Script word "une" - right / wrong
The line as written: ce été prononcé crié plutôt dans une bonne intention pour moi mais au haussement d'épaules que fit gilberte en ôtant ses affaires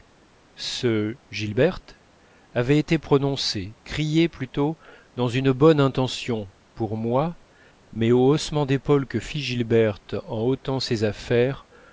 right